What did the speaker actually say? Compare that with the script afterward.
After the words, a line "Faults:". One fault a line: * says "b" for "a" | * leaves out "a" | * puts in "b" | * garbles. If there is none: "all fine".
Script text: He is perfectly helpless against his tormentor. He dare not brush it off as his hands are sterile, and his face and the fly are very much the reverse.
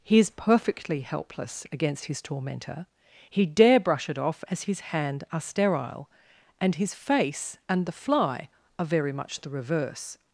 He is perfectly helpless against his tormentor. He dare brush it off as his hand are sterile, and his face and the fly are very much the reverse.
Faults:
* leaves out "not"
* says "hand" for "hands"